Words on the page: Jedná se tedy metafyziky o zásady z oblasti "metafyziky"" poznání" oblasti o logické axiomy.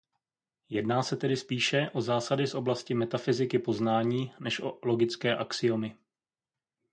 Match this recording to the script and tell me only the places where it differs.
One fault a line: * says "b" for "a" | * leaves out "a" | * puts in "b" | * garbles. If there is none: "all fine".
* says "spíše" for "metafyziky"
* says "než" for "oblasti"